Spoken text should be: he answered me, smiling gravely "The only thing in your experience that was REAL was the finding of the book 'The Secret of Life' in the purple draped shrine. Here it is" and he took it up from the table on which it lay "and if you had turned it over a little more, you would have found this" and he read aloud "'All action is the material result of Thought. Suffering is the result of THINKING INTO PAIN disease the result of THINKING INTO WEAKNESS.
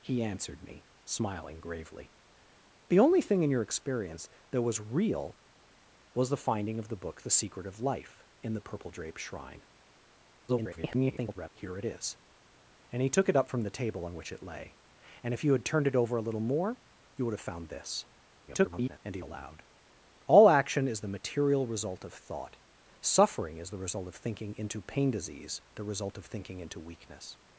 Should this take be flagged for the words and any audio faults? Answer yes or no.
yes